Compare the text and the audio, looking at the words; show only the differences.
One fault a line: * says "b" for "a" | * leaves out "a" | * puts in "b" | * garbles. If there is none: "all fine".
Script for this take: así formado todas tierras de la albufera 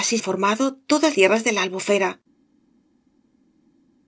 all fine